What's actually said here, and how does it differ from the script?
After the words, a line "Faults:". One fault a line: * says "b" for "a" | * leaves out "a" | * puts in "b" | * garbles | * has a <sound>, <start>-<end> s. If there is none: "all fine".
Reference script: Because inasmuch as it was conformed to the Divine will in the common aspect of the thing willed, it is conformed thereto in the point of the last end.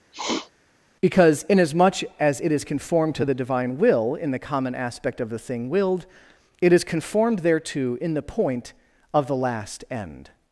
Because inasmuch as it is conformed to the Divine will in the common aspect of the thing willed, it is conformed thereto in the point of the last end.
Faults:
* has a sniff, 0.1-0.5 s
* says "is" for "was"